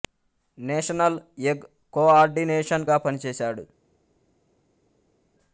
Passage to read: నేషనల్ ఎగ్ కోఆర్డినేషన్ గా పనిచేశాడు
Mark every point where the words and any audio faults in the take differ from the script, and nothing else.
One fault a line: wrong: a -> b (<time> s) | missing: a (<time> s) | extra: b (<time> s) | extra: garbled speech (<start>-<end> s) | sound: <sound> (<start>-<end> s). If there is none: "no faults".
no faults